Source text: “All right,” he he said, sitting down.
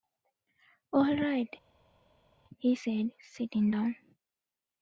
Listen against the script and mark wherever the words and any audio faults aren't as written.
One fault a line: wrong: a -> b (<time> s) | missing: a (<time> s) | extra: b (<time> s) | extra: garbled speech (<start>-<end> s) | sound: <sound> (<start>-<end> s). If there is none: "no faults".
missing: he (2.7 s)